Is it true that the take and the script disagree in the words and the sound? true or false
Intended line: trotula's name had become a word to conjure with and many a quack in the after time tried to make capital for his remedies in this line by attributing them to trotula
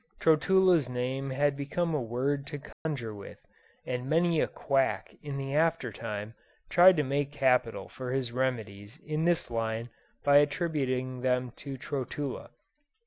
true